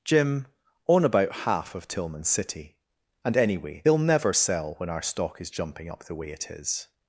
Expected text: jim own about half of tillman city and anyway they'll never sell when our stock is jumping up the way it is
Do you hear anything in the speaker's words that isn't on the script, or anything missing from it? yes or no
no